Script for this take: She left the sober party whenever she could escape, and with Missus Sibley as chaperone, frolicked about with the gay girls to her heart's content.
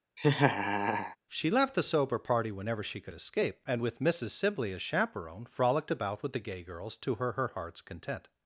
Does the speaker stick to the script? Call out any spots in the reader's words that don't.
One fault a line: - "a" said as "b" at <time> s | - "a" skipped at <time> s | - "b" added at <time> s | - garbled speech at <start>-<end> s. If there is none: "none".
- "her" added at 7.3 s